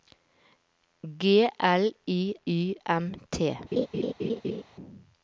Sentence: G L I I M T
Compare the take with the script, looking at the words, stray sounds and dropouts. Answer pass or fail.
fail